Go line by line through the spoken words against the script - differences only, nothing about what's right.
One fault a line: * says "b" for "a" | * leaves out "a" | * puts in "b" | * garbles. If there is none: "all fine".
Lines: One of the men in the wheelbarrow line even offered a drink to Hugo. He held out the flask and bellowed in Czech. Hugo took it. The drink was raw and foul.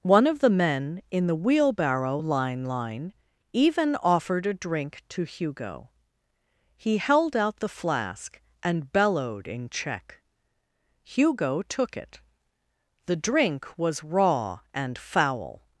* puts in "line"